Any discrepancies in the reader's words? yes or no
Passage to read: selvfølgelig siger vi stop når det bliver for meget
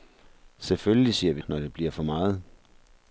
yes